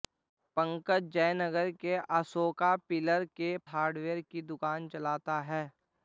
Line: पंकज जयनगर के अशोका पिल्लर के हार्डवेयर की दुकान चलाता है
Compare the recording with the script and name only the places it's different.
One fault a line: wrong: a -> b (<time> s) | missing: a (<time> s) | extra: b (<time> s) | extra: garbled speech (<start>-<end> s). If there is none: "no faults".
no faults